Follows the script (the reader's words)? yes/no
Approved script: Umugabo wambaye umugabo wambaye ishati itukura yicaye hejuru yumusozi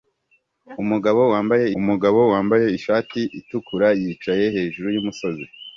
yes